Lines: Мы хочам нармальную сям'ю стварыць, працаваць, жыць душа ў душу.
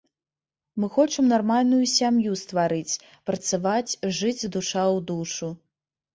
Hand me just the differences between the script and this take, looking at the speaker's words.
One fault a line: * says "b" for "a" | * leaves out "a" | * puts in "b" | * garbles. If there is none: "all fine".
all fine